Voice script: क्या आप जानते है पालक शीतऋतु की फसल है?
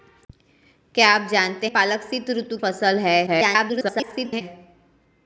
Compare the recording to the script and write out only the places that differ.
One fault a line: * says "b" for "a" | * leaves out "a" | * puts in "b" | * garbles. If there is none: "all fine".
* leaves out "है"
* leaves out "की"
* garbles